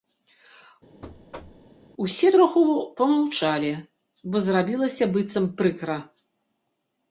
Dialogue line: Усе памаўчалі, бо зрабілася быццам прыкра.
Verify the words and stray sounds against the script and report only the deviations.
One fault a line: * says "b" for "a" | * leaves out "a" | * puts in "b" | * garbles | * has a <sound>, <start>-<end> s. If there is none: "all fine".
* has a thud, 1.0-1.7 s
* puts in "троху"